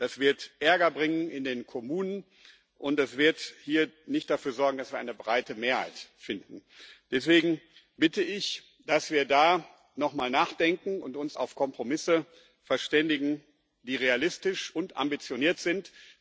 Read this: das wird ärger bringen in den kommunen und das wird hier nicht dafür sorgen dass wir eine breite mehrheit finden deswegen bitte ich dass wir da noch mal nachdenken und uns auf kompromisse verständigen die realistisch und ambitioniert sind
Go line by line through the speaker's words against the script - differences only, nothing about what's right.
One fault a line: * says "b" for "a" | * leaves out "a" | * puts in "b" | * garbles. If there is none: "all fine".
all fine